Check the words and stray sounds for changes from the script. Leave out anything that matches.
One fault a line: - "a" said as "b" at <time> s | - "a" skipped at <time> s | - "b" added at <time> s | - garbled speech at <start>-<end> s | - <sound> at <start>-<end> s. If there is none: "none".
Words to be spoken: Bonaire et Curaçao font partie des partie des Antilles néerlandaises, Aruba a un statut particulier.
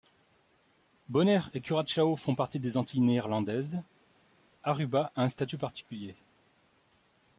- "partie des" skipped at 2.8 s